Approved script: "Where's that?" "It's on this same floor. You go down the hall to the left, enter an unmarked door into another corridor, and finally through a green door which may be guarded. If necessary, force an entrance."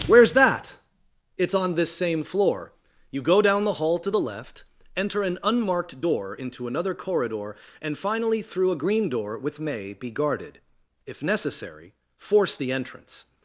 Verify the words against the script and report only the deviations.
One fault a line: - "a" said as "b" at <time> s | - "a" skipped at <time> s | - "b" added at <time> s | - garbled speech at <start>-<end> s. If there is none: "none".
- "which" said as "with" at 9.4 s
- "an" said as "the" at 12.6 s